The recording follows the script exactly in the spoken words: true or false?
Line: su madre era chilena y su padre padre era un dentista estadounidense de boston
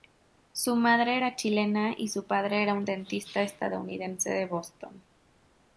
false